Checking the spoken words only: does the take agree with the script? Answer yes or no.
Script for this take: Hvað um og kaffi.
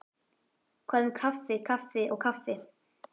no